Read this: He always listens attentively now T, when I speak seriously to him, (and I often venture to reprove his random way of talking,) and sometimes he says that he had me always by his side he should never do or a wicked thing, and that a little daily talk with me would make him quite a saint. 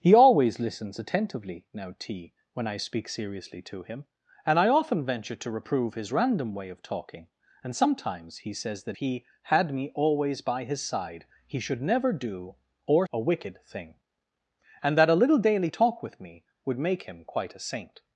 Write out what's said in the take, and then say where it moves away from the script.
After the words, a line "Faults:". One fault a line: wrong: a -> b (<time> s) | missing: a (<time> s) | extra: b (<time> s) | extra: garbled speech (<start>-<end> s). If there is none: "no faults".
He always listens attentively now T, when I speak seriously to him, (and I often venture to reprove his random way of talking,) and sometimes he says that he had me always by his side he should never do or a wicked thing, and that a little daily talk with me would make him quite a saint.
Faults:
no faults